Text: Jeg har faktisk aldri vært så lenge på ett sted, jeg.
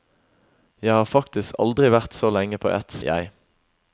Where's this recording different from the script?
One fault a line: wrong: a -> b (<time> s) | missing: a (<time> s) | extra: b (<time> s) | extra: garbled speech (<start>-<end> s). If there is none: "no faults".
missing: sted (3.0 s)